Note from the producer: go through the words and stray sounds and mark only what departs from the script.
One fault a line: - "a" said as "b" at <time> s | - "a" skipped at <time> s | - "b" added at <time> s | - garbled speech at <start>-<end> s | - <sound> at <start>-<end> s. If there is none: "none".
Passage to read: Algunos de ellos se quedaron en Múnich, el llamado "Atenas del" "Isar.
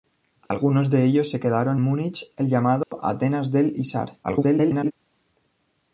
- dropout at 0.5-0.5 s
- "en" skipped at 1.8 s
- dropout at 2.8-2.9 s
- garbled speech at 4.2-4.9 s